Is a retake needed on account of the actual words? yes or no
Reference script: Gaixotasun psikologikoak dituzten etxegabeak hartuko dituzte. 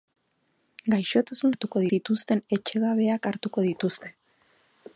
yes